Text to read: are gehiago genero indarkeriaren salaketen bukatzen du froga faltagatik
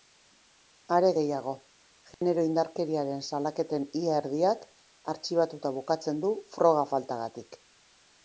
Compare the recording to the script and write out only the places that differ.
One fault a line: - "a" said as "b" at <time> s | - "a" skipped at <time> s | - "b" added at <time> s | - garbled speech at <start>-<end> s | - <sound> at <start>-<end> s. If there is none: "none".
- dropout at 2.1-2.2 s
- "ia erdiak artxibatuta" added at 4.0 s